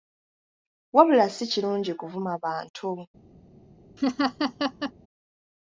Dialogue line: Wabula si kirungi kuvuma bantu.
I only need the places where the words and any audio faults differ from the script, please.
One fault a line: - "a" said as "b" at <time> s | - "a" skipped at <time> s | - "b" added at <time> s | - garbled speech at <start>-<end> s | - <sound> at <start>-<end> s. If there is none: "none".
- laugh at 4.0-4.9 s